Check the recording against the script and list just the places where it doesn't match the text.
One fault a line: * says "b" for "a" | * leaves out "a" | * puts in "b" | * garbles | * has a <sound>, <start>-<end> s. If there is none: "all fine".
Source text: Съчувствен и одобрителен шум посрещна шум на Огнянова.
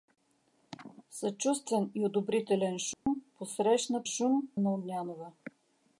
* has a dropout, 2.9-3.1 s